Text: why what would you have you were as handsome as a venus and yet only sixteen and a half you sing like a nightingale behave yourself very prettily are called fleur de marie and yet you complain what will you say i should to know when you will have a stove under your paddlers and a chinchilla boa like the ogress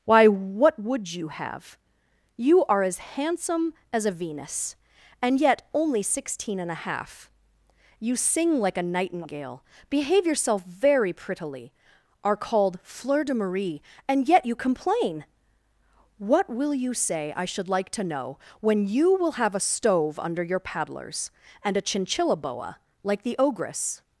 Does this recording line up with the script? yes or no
no